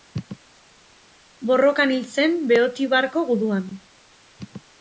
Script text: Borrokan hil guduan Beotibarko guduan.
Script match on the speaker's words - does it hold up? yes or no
no